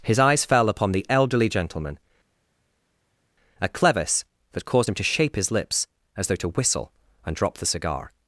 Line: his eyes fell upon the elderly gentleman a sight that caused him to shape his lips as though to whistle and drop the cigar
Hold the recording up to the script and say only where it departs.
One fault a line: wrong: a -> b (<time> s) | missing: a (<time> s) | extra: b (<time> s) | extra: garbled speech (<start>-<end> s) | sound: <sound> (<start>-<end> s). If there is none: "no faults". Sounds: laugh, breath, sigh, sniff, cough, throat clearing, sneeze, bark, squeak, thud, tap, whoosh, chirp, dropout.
wrong: sight -> clevis (3.7 s)